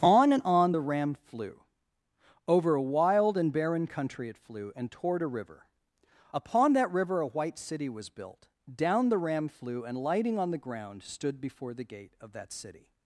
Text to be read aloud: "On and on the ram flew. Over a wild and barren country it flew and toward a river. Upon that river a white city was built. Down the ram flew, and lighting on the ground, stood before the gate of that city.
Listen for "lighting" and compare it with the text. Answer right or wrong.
right